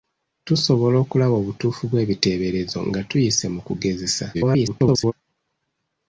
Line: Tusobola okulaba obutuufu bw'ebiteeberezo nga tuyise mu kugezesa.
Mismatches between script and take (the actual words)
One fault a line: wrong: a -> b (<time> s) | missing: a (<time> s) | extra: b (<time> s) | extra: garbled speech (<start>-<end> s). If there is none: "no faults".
extra: garbled speech (4.3-5.1 s)